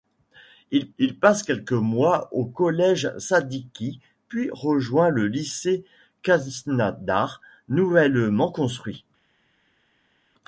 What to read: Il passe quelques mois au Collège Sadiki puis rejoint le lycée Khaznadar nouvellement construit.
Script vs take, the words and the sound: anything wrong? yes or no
yes